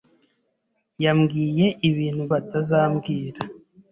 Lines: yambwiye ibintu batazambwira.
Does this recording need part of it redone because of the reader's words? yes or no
no